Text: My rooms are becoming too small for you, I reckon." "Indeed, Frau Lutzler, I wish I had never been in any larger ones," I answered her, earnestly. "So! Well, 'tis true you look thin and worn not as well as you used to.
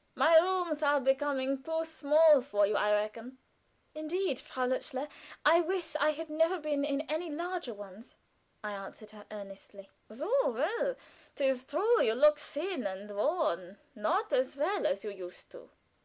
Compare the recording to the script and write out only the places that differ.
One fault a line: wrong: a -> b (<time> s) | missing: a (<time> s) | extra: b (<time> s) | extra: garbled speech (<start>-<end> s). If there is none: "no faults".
no faults